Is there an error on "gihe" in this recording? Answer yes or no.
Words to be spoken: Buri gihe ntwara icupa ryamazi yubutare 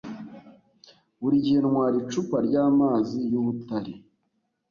no